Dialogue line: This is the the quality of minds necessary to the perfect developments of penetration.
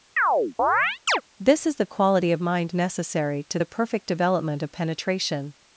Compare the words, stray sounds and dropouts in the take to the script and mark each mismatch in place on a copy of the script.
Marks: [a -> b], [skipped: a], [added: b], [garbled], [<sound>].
[chirp] This is the [skipped: the] quality of [minds -> mind] necessary to the perfect [developments -> development] of penetration.